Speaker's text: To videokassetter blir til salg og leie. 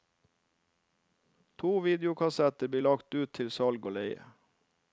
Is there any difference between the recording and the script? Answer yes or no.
yes